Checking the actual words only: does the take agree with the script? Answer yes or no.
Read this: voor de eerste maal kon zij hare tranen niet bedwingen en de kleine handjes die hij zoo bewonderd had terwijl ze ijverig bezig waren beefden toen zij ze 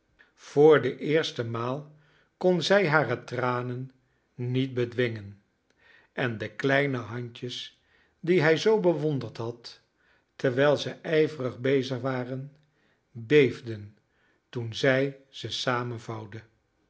yes